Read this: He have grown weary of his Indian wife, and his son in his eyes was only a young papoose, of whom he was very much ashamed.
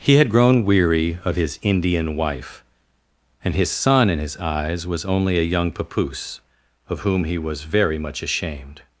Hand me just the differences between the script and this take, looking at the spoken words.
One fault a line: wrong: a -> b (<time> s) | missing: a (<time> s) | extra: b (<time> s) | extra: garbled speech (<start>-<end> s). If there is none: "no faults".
wrong: have -> had (0.1 s)